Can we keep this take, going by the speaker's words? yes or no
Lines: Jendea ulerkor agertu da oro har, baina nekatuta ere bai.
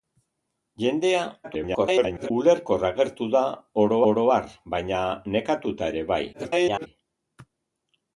no